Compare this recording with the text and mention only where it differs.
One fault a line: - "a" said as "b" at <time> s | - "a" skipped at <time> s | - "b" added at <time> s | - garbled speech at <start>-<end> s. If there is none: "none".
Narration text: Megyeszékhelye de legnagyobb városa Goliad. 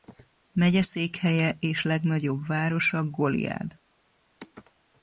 - "de" said as "és" at 1.6 s